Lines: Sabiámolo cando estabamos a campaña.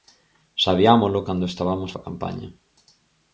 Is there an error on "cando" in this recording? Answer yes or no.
no